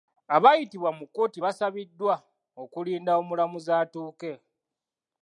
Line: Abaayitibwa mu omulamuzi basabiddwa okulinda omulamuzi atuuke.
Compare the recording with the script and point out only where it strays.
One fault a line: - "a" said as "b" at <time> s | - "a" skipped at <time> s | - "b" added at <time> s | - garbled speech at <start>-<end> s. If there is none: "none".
- "omulamuzi" said as "kkooti" at 1.1 s